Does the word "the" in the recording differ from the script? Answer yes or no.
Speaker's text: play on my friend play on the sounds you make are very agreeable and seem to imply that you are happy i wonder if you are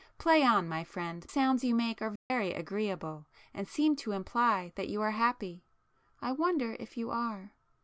yes